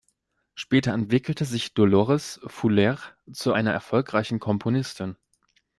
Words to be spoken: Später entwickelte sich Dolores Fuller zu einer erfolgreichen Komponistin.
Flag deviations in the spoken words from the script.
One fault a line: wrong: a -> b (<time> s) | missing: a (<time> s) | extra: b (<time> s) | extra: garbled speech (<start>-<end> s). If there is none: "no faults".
no faults